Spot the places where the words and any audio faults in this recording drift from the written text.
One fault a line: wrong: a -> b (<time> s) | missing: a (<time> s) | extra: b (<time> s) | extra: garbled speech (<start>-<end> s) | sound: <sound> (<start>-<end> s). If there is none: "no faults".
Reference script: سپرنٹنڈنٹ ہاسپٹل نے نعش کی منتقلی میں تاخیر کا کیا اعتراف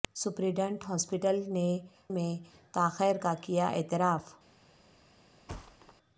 missing: نعش کی منتقلی (1.7 s)
sound: thud (5.5-5.9 s)